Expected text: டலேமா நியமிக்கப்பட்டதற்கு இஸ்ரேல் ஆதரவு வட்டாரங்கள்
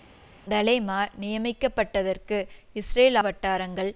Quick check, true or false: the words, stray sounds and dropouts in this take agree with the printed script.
false